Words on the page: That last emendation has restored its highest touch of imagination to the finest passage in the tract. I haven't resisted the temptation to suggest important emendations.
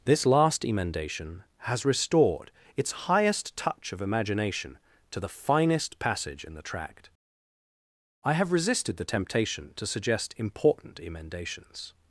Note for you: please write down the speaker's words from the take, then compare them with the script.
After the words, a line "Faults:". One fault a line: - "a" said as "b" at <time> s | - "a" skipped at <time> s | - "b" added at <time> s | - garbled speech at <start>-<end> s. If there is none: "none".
This last emendation has restored its highest touch of imagination to the finest passage in the tract. I have resisted the temptation to suggest important emendations.
Faults:
- "That" said as "This" at 0.0 s
- "haven't" said as "have" at 8.3 s